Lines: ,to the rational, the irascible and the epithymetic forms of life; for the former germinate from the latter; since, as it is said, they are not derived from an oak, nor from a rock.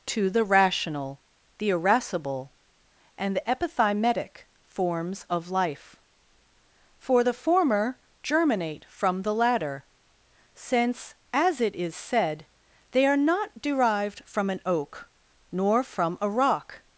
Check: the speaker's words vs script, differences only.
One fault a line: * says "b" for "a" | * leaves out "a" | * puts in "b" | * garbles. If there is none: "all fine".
all fine